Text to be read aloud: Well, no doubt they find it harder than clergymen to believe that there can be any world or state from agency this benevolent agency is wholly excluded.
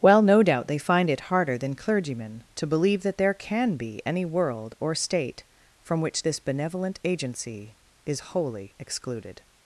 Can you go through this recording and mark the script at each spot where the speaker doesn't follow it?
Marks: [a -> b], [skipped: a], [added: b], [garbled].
Well, no doubt they find it harder than clergymen to believe that there can be any world or state from [agency -> which] this benevolent agency is wholly excluded.